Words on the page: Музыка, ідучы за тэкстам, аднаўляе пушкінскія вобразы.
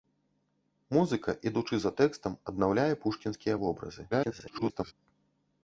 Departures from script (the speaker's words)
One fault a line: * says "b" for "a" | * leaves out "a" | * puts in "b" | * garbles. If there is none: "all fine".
* garbles